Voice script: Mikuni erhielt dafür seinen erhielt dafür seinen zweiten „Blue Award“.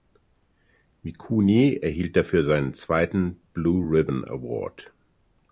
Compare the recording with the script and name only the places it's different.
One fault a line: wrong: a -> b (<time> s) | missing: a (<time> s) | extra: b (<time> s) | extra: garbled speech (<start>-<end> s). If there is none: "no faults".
missing: erhielt dafür seinen (2.7 s)
extra: Ribbon (3.8 s)